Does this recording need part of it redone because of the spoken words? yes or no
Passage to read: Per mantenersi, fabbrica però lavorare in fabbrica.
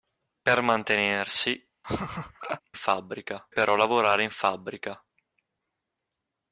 no